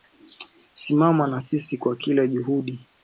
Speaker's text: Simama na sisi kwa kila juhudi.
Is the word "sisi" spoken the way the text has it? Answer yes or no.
yes